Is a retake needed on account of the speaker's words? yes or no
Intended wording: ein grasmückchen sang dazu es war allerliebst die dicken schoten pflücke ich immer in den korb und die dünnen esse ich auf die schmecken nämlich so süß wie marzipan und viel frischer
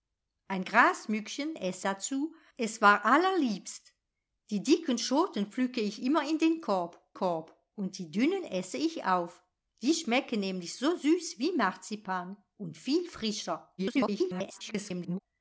yes